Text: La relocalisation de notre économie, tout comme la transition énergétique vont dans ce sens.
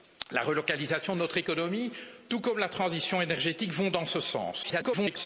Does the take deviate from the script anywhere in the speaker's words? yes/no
yes